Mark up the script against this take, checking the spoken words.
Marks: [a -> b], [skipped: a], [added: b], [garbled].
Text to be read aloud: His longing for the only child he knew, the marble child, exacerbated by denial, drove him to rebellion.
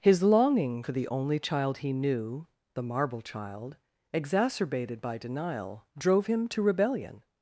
His longing for the only child he knew, the marble child, exacerbated by denial, drove him to rebellion.